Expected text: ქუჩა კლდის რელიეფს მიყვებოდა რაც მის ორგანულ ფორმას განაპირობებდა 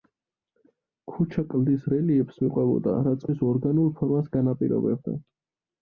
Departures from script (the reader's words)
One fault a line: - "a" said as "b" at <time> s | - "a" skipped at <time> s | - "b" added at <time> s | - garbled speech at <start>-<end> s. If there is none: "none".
none